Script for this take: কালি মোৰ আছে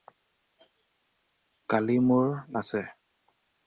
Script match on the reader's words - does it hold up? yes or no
yes